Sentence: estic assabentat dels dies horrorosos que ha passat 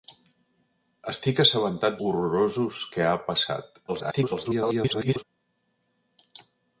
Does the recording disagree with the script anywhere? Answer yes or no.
yes